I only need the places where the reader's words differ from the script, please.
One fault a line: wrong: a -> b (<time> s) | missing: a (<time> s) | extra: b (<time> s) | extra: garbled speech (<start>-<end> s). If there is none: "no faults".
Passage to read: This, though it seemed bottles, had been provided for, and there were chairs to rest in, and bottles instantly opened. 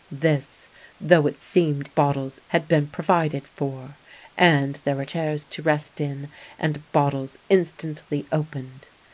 no faults